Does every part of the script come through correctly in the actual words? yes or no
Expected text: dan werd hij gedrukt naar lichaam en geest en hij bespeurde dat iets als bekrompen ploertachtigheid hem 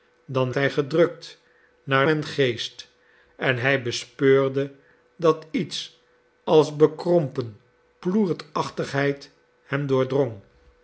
no